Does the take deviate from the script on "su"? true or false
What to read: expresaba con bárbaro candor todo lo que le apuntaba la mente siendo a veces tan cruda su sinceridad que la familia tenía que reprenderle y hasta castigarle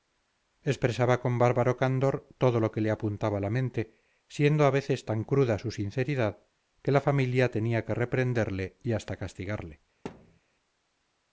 false